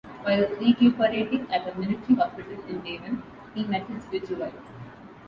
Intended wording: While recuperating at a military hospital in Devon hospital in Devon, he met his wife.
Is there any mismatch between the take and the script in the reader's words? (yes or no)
yes